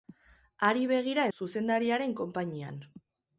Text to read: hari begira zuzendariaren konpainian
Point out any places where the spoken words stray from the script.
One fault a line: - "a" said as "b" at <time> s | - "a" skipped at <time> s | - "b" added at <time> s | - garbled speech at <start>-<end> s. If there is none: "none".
none